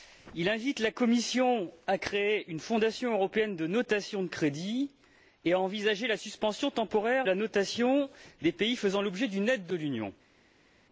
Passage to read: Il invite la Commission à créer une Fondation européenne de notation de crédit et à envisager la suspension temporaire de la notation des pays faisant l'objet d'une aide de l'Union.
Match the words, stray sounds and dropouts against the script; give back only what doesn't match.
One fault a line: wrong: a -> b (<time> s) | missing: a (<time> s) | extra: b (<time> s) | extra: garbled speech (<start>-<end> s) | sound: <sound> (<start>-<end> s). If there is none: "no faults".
missing: de (7.3 s)